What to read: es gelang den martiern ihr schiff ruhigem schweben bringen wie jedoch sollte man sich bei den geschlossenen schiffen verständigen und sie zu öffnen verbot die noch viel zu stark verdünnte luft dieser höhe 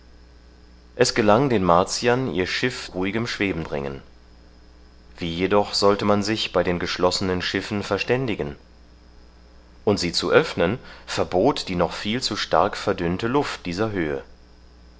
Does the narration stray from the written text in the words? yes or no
no